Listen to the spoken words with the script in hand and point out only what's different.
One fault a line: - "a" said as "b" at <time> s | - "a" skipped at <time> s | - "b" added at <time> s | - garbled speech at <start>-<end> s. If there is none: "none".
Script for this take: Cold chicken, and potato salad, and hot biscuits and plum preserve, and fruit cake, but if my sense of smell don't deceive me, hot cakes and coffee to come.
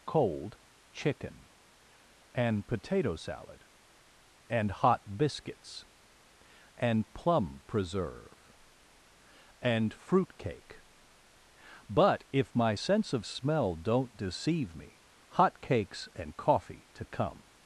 none